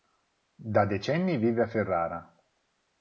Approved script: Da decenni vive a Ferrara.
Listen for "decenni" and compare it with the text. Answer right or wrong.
right